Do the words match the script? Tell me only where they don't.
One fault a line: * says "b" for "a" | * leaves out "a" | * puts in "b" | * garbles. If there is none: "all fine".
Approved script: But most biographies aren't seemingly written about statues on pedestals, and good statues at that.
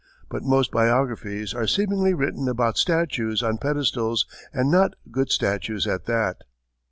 * says "are" for "aren't"
* puts in "not"